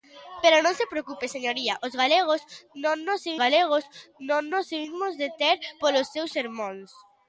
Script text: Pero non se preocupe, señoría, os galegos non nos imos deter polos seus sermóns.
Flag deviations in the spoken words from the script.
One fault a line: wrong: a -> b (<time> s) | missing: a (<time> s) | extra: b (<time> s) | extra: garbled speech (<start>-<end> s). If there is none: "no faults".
extra: galegos non nos (3.4 s)